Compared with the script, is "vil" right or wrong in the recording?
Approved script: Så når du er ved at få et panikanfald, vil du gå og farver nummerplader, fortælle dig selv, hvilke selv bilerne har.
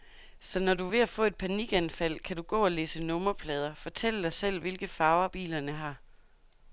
wrong